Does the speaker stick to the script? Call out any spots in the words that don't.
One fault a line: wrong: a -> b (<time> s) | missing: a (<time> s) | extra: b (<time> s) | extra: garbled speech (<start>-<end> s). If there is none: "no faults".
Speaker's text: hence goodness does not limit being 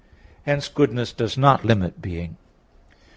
no faults